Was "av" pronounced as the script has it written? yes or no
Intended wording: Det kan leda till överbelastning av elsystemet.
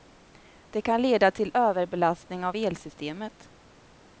yes